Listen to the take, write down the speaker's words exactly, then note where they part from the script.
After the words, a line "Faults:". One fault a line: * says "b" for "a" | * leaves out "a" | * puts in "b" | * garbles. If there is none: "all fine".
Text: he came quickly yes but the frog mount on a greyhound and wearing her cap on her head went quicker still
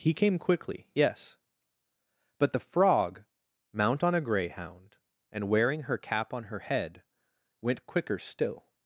he came quickly yes but the frog mount on a greyhound and wearing her cap on her head went quicker still
Faults:
all fine